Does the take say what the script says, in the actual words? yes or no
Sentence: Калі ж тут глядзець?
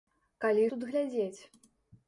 no